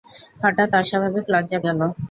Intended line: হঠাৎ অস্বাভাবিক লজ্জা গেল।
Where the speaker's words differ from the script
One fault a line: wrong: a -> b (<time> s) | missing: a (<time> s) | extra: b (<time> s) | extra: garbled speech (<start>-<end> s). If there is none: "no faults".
no faults